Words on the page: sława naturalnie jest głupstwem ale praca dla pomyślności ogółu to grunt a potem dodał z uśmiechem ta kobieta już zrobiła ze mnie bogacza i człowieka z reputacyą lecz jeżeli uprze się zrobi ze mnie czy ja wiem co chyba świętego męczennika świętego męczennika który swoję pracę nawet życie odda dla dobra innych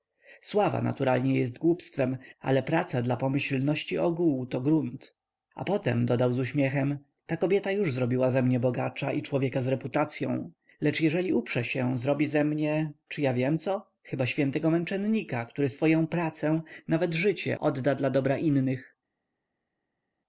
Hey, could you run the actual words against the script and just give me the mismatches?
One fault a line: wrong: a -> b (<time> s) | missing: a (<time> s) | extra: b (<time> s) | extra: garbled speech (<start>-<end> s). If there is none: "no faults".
missing: świętego męczennika (15.5 s)